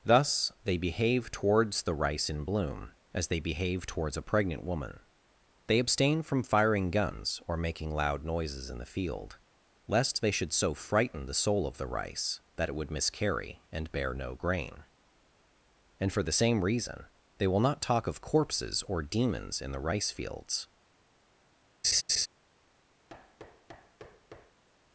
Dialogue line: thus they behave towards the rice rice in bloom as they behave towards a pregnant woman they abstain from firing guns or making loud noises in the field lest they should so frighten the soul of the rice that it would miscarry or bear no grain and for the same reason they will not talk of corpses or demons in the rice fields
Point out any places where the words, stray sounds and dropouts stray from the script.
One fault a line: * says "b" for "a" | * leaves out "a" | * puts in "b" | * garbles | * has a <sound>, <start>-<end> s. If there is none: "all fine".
* leaves out "rice"
* says "and" for "or"
* has a laugh, 21.8-22.3 s
* has a thud, 23.1-24.6 s